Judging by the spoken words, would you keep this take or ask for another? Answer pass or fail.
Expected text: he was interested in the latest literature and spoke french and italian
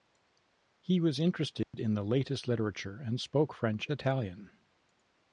fail